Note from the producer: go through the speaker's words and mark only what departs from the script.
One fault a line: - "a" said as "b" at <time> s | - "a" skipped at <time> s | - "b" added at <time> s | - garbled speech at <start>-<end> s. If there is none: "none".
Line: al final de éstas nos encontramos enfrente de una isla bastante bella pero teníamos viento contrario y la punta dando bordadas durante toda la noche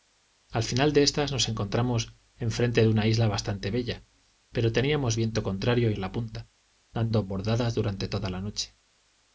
none